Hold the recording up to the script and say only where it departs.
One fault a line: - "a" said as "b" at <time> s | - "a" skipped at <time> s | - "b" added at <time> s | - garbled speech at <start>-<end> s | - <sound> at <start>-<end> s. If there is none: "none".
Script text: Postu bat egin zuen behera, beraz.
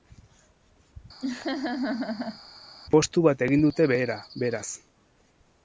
- laugh at 1.2-2.4 s
- "zuen" said as "dute" at 3.7 s